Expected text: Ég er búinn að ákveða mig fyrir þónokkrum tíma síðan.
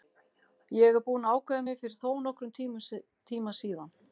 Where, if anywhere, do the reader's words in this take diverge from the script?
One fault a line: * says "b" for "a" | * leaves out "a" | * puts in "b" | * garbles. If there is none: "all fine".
all fine